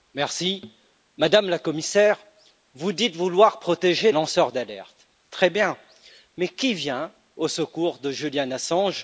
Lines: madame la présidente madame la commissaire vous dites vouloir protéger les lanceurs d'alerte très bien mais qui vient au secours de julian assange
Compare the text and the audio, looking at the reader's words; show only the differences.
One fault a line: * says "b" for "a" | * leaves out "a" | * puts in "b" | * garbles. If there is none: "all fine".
* leaves out "les"